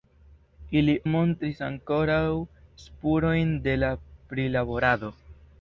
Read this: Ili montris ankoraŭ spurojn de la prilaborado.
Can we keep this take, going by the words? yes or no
yes